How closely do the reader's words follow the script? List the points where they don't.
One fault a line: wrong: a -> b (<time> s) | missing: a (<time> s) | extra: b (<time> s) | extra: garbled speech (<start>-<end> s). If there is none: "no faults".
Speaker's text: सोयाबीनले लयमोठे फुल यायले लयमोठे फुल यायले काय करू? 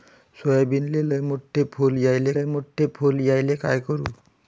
no faults